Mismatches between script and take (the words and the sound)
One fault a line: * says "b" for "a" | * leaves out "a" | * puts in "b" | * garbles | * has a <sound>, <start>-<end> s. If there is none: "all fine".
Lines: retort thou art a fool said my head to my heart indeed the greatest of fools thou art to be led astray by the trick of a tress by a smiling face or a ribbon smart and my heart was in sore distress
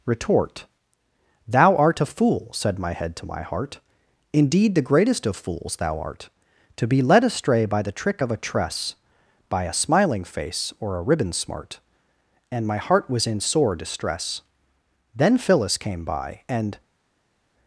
* puts in "then phyllis came by and"